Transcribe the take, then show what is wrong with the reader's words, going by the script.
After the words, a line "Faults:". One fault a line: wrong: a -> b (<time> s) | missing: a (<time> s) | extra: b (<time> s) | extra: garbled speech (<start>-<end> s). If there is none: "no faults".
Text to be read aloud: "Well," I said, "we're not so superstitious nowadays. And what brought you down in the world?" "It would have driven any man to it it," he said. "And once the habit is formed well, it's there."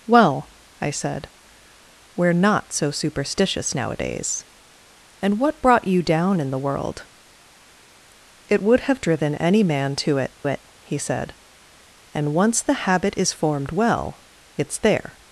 "Well," I said, "we're not so superstitious nowadays. And what brought you down in the world?" "It would have driven any man to it it," he said. "And once the habit is formed well, it's there."
Faults:
no faults